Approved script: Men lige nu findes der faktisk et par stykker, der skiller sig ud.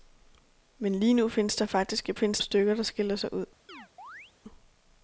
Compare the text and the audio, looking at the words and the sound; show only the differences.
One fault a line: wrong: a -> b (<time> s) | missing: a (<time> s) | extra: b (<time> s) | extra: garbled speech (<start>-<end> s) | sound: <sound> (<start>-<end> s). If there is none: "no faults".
wrong: par -> findes (2.1 s)
sound: chirp (3.7-4.3 s)